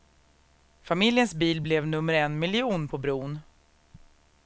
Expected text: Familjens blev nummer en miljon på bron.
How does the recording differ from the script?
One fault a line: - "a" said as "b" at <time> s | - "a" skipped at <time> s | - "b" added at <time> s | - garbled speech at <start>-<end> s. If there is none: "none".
- "bil" added at 1.3 s